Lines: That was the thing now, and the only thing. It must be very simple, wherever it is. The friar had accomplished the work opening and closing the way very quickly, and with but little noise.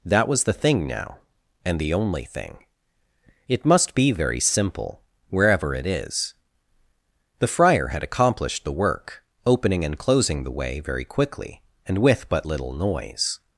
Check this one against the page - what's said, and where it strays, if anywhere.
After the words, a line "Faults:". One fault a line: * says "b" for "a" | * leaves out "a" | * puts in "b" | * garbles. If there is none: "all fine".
That was the thing now, and the only thing. It must be very simple, wherever it is. The friar had accomplished the work opening and closing the way very quickly, and with but little noise.
Faults:
all fine